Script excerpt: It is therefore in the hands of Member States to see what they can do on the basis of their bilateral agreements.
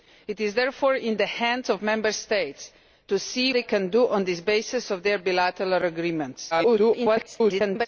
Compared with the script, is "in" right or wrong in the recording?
right